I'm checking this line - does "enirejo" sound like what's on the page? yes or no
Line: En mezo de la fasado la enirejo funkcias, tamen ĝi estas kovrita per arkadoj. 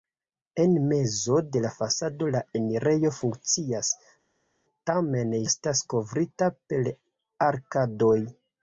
yes